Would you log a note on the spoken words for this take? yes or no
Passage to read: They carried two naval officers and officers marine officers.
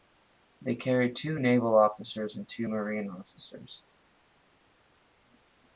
yes